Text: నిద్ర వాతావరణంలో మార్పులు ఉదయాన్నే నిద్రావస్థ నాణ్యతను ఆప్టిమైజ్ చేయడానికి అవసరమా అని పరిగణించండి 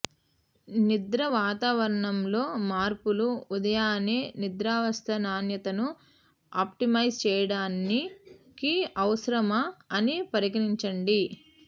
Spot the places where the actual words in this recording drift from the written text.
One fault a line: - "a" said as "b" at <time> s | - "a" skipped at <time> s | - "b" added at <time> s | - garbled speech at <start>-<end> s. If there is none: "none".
none